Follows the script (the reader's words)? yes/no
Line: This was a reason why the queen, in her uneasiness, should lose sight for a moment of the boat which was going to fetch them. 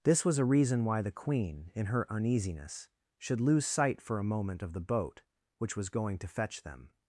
yes